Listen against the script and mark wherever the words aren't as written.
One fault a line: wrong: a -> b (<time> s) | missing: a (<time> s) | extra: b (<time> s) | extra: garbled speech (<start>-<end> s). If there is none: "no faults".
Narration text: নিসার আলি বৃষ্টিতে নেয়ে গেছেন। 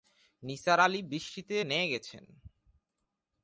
no faults